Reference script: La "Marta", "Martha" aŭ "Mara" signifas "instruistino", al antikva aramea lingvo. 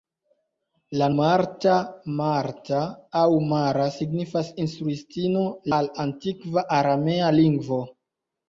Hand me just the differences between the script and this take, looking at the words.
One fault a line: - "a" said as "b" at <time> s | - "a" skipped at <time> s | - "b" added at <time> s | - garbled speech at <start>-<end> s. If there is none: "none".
none